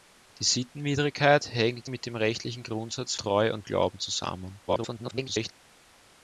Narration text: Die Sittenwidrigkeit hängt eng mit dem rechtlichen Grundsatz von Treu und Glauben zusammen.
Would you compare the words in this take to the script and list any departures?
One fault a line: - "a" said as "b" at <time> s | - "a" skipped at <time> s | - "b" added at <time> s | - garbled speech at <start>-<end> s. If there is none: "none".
- "eng" skipped at 1.9 s
- "von" skipped at 3.1 s
- garbled speech at 4.7-5.5 s